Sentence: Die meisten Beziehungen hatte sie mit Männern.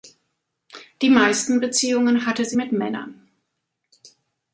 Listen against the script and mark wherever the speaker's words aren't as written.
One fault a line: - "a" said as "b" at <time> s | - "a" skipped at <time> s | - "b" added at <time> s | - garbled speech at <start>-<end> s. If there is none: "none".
none